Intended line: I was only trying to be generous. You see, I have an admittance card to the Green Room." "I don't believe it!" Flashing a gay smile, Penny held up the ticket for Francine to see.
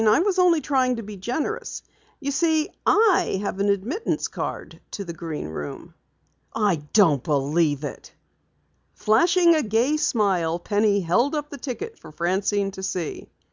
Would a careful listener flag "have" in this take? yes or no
no